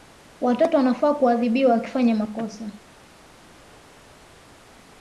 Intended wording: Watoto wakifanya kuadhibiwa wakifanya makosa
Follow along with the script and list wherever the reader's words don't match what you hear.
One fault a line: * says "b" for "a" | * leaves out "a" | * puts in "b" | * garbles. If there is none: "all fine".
* says "wanafaa" for "wakifanya"